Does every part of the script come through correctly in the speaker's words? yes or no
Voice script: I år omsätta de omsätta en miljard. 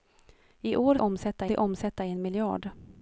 yes